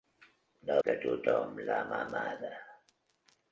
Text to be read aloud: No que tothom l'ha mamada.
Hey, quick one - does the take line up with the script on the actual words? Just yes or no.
yes